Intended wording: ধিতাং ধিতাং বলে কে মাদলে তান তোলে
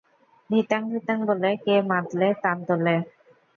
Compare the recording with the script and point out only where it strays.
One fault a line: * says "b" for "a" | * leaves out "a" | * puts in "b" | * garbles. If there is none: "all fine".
all fine